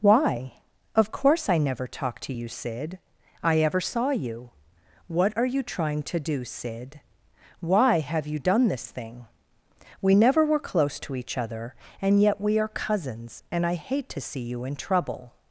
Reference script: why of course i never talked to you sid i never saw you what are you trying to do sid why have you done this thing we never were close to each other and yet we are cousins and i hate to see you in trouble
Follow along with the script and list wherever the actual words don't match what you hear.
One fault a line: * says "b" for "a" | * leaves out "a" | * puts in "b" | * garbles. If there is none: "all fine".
* says "ever" for "never"